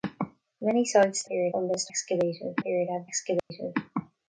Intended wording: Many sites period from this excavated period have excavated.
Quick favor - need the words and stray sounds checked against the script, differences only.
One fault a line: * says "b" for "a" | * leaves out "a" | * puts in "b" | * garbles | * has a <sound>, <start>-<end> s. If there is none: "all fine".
* has a dropout, 3.4-3.5 s